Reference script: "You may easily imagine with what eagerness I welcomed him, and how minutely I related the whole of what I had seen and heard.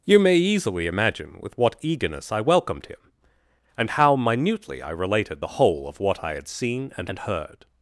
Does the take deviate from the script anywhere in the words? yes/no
yes